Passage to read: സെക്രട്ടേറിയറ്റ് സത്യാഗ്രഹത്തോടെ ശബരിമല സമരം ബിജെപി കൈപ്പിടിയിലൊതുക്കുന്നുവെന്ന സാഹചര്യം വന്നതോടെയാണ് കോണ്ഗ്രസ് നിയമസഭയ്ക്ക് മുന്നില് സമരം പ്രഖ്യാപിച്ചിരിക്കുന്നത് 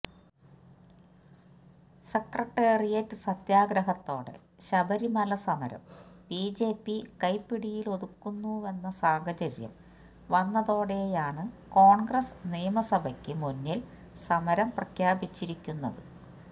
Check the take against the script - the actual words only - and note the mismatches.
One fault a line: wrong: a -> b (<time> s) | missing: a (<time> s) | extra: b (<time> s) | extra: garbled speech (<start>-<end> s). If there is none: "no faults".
no faults